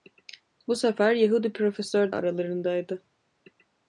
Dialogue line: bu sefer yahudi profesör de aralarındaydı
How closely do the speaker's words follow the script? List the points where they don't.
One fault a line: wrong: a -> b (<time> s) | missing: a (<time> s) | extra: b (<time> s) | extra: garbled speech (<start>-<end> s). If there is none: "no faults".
missing: de (2.1 s)